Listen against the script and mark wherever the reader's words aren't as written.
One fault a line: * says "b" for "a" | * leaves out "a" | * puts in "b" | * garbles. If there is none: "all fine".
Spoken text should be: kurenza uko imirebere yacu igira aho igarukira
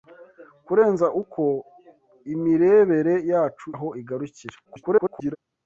* leaves out "igira"
* garbles